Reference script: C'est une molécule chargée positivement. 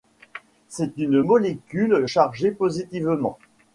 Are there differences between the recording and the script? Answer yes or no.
no